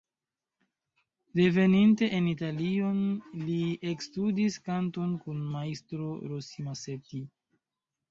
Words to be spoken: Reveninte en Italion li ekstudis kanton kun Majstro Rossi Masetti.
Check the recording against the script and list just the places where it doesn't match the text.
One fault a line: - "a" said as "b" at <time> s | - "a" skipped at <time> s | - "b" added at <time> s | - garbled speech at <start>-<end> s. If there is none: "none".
none